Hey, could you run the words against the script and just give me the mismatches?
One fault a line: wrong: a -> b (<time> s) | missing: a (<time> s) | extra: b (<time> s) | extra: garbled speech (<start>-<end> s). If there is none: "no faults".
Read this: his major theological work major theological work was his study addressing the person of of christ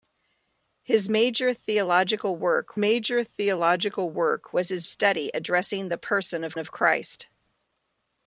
no faults